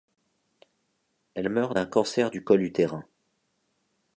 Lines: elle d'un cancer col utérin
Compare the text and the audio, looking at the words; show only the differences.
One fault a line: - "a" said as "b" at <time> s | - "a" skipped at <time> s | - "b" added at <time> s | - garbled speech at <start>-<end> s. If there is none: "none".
- "meurt" added at 1.5 s
- "du" added at 2.3 s